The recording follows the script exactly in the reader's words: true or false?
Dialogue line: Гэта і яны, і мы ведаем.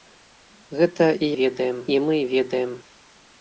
false